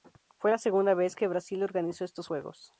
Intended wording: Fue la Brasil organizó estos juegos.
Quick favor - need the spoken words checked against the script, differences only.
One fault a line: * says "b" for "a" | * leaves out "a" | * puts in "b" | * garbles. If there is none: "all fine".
* puts in "segunda vez que"